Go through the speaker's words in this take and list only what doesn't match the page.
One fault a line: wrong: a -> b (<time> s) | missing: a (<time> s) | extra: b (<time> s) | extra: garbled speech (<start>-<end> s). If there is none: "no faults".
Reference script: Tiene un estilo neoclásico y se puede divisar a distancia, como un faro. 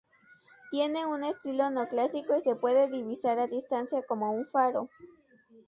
no faults